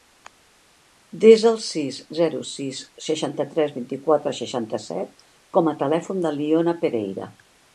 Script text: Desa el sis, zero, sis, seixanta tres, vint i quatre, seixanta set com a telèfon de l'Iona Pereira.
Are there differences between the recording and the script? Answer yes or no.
no